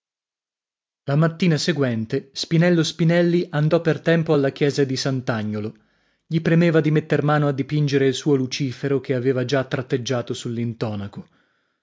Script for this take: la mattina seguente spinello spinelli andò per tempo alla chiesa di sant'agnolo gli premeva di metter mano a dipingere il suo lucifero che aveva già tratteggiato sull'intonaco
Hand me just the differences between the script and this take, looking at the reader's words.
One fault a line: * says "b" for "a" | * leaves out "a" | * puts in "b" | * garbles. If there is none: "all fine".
all fine